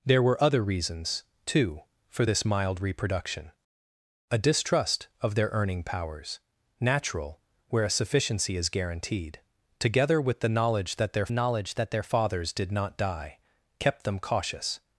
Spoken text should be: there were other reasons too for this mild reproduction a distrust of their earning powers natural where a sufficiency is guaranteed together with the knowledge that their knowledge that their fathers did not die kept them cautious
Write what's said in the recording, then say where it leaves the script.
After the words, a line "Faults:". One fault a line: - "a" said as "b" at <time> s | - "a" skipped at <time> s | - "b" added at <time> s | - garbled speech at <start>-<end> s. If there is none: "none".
there were other reasons too for this mild reproduction a distrust of their earning powers natural where a sufficiency is guaranteed together with the knowledge that their knowledge that their fathers did not die kept them cautious
Faults:
none